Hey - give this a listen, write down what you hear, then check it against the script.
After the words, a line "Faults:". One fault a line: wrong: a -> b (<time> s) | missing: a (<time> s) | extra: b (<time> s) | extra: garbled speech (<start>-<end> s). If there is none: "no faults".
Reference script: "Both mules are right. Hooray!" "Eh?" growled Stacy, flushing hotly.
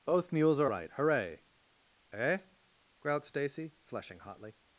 "Both mules are right. Hooray!" "Eh?" growled Stacy, flushing hotly.
Faults:
no faults